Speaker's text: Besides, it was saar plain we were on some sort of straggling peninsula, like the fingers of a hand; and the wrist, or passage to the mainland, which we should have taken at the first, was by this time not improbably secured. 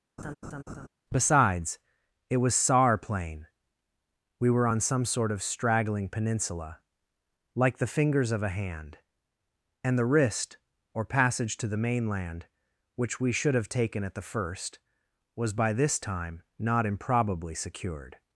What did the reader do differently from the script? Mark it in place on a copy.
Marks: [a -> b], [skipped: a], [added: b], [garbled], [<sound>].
[laugh] Besides, it was saar plain we were on some sort of straggling peninsula, like the fingers of a hand; and the wrist, or passage to the mainland, which we should have taken at the first, was by this time not improbably secured.